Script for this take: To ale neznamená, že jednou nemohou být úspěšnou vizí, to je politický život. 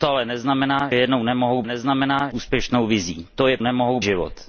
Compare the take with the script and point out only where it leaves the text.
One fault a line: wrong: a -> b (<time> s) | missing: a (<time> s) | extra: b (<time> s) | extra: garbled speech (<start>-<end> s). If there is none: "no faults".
missing: že (0.9 s)
wrong: být -> neznamená (1.6 s)
wrong: politický -> nemohou (3.6 s)